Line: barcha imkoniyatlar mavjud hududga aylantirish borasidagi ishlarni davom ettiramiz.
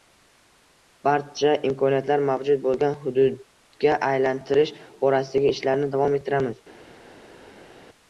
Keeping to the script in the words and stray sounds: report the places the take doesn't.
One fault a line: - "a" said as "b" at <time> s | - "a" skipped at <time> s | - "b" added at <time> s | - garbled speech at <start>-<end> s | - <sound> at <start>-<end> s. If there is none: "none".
- "bo‘lgan" added at 2.6 s